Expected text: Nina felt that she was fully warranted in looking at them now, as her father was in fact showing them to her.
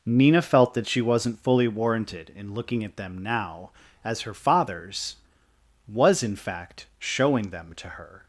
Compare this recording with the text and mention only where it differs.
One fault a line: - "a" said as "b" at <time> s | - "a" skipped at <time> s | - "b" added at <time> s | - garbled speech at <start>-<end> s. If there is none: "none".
- "was" said as "wasn't" at 1.0 s
- "father" said as "fathers" at 4.3 s